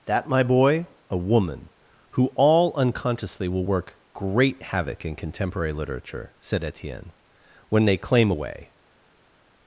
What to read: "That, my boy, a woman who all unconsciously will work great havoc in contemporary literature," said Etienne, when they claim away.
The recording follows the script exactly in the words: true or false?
true